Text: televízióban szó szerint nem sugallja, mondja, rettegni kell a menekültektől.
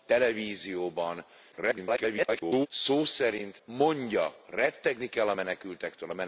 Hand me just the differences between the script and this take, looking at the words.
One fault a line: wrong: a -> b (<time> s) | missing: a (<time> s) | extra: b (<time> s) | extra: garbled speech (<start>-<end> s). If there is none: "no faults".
extra: garbled speech (1.5-2.7 s)
missing: nem sugallja (3.6 s)